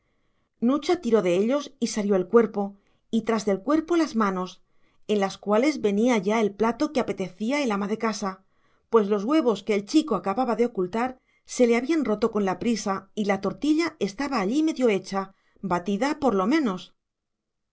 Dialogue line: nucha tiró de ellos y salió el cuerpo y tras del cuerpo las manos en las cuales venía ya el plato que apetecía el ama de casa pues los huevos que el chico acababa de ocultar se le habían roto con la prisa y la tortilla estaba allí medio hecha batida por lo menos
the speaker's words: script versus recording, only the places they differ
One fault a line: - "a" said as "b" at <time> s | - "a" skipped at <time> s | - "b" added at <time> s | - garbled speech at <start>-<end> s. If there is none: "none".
none